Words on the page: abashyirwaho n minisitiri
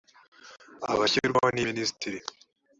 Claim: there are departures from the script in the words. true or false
false